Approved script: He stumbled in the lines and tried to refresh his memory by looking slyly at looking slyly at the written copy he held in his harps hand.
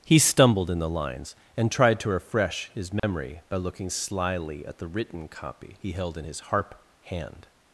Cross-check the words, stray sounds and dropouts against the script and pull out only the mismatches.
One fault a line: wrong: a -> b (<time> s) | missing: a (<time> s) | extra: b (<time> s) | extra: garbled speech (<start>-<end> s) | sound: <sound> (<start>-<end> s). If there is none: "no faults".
sound: dropout (3.0-3.0 s)
missing: looking slyly at (4.8 s)
wrong: harps -> harp (6.5 s)